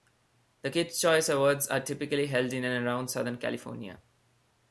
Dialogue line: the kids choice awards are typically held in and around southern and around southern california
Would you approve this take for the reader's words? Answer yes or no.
no